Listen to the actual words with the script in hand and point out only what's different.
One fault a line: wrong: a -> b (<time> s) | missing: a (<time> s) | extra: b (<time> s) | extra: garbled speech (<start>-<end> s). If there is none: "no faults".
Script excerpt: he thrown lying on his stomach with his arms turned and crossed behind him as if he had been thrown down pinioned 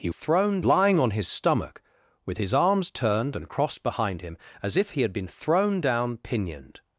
no faults